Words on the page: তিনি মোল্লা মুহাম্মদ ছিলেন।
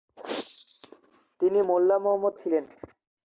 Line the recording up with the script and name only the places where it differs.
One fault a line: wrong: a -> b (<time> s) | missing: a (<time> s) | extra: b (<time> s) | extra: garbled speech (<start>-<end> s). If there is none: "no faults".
no faults